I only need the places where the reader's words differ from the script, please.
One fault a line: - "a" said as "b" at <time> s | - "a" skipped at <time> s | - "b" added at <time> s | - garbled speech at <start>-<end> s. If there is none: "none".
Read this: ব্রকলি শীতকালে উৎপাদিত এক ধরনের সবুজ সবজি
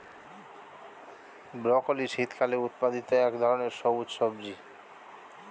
none